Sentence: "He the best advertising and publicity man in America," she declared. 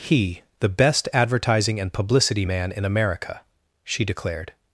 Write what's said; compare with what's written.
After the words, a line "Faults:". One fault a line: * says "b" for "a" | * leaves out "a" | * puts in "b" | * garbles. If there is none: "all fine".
"He the best advertising and publicity man in America," she declared.
Faults:
all fine